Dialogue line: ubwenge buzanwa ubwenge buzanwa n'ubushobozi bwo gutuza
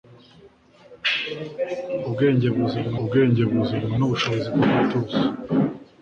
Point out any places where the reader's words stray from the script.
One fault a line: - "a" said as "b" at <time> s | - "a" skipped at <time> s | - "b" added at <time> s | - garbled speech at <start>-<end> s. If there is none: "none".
none